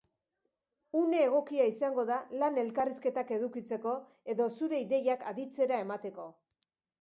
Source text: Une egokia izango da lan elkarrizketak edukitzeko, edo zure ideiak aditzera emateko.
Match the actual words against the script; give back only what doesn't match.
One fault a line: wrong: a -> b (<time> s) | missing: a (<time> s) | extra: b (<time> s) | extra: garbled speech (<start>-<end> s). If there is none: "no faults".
no faults